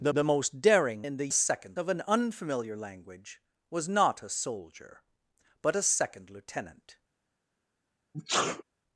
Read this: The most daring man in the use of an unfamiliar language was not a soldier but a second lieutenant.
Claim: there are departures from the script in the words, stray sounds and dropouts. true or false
true